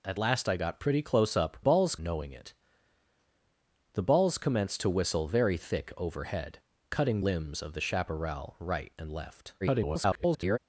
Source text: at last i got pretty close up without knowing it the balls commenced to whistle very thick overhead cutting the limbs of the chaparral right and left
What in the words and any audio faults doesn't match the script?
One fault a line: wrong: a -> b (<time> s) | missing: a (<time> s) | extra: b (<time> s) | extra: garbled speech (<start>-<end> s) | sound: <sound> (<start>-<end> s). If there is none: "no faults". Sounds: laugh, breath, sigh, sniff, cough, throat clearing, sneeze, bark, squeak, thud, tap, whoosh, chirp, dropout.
wrong: without -> balls (1.6 s)
missing: the (7.2 s)
extra: garbled speech (9.6-10.6 s)